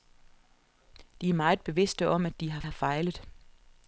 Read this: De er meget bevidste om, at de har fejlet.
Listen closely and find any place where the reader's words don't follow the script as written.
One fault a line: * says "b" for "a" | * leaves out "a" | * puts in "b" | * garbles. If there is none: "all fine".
* puts in "har"